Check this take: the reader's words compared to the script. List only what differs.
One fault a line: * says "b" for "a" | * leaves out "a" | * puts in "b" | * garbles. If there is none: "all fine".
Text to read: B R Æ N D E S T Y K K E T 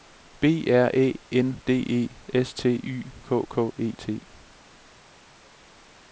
all fine